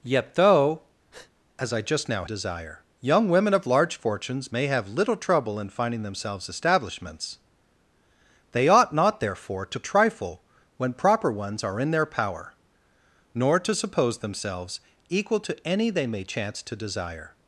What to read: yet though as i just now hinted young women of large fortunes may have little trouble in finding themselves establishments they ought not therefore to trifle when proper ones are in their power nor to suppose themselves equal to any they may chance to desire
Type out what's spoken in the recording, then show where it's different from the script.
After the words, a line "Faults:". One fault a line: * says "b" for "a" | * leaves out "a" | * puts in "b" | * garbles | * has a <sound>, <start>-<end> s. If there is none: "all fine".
yet though as i just now desire young women of large fortunes may have little trouble in finding themselves establishments they ought not therefore to trifle when proper ones are in their power nor to suppose themselves equal to any they may chance to desire
Faults:
* has a breath, 1.1-1.3 s
* says "desire" for "hinted"